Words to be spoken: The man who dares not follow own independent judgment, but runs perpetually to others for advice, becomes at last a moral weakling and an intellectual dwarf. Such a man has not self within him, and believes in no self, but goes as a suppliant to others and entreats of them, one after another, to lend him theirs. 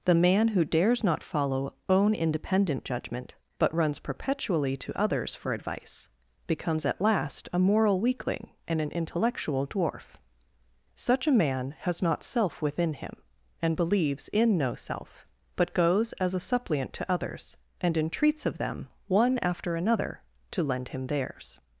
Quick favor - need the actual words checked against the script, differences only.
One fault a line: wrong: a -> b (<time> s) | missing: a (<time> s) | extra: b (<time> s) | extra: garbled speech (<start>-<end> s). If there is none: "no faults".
no faults